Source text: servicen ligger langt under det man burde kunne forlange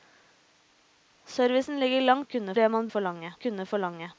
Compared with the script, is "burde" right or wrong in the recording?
wrong